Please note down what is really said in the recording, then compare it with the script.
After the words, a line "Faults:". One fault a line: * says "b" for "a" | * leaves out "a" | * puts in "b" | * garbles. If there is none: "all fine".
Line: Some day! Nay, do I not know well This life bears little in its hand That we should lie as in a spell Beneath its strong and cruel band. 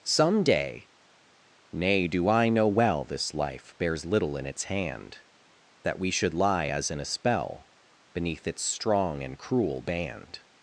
Some day! Nay, do I know well This life bears little in its hand That we should lie as in a spell Beneath its strong and cruel band.
Faults:
* leaves out "not"